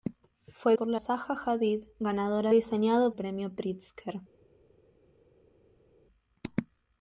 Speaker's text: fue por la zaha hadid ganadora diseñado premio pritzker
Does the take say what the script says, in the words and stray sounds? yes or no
yes